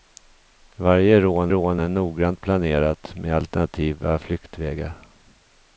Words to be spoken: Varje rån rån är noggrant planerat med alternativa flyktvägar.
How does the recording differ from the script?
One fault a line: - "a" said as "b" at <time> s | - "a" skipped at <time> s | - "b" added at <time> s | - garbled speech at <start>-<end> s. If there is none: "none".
none